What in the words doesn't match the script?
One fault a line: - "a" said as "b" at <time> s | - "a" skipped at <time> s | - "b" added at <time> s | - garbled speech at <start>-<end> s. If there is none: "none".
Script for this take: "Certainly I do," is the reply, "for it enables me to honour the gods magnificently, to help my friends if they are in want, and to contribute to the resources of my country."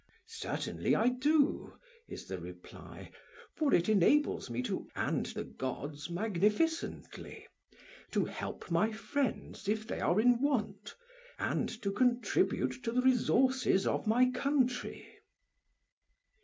- "honour" said as "and" at 4.9 s